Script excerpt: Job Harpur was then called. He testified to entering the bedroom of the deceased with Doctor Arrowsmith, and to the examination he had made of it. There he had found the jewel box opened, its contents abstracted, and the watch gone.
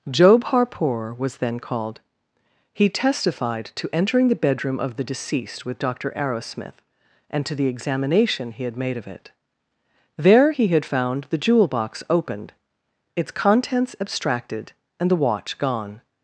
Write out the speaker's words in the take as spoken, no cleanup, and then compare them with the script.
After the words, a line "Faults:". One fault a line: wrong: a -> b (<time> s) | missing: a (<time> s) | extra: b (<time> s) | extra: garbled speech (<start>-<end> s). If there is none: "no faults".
Job Harpur was then called. He testified to entering the bedroom of the deceased with Doctor Arrowsmith, and to the examination he had made of it. There he had found the jewel box opened, its contents abstracted, and the watch gone.
Faults:
no faults